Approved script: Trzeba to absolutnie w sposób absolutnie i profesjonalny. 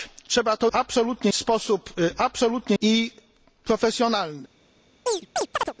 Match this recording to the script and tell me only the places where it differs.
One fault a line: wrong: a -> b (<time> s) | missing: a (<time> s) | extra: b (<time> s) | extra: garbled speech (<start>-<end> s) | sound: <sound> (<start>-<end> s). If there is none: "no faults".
sound: chirp (5.1-5.7 s)